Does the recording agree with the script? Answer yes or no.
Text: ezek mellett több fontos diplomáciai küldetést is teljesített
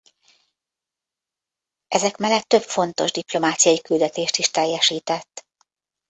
yes